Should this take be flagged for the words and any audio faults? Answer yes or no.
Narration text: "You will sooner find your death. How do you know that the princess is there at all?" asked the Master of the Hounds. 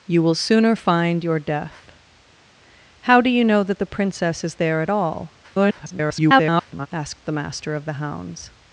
yes